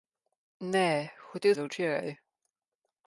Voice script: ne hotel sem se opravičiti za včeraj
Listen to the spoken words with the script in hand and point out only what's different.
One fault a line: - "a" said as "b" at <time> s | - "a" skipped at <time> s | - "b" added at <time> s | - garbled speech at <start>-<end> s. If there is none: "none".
- "sem se opravičiti" skipped at 1.6 s